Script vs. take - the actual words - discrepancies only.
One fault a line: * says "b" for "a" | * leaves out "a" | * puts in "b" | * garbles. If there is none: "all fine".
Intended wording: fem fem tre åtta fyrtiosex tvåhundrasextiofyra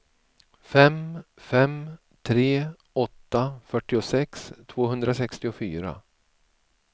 all fine